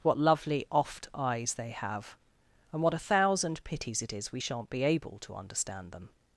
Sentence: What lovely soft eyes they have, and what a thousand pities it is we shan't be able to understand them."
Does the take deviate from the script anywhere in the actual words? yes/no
yes